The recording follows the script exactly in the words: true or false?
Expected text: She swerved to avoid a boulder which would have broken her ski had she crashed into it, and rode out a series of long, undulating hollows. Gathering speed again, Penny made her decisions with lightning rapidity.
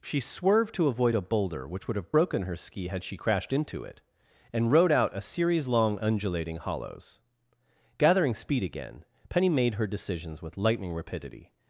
false